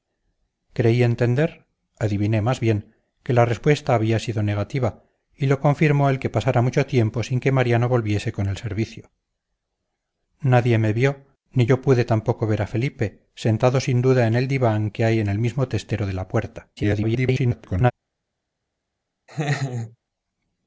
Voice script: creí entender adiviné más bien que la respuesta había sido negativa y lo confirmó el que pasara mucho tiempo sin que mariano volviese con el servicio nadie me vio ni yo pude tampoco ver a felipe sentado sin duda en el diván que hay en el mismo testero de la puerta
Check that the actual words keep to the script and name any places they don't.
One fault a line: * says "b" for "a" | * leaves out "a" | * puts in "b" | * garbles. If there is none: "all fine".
* garbles